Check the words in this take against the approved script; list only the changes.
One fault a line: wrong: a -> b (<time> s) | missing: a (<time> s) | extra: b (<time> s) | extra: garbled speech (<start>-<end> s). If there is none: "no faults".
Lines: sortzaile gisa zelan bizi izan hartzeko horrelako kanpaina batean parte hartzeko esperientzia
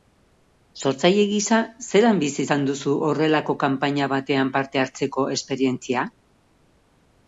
wrong: hartzeko -> duzu (2.7 s)